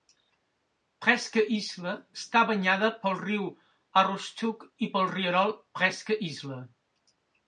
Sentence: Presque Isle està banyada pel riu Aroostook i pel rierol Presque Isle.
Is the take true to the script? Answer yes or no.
yes